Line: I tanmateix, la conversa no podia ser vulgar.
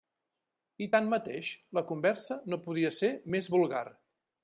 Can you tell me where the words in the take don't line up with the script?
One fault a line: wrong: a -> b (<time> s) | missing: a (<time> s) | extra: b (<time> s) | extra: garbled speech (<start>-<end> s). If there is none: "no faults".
extra: més (3.4 s)